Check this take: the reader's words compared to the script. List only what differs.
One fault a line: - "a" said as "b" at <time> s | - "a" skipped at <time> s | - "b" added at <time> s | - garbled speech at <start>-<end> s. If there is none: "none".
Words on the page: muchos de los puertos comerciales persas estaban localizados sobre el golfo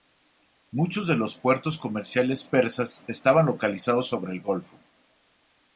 none